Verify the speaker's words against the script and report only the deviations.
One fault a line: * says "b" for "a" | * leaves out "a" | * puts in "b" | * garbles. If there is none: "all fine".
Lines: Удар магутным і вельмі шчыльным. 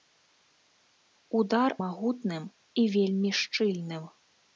all fine